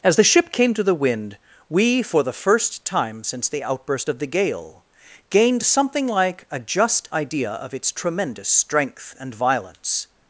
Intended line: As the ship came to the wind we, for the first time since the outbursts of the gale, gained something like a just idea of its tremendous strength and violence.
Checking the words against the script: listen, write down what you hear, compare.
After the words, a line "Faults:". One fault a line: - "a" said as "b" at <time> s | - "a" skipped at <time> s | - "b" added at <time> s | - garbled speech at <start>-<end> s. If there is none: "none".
As the ship came to the wind we, for the first time since the outburst of the gale, gained something like a just idea of its tremendous strength and violence.
Faults:
- "outbursts" said as "outburst" at 3.6 s